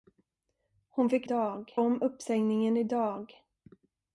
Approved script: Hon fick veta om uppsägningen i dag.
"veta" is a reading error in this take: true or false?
true